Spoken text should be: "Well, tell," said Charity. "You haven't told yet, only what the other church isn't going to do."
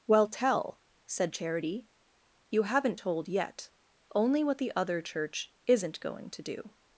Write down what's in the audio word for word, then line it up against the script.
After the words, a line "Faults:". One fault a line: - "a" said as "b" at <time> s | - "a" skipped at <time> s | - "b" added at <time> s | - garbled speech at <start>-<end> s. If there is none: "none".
"Well, tell," said Charity. "You haven't told yet, only what the other church isn't going to do."
Faults:
none